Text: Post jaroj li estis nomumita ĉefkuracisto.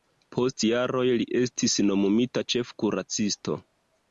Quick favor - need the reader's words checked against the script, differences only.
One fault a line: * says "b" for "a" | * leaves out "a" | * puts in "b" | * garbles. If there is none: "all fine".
all fine